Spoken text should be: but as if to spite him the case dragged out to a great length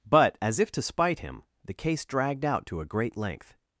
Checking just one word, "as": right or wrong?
right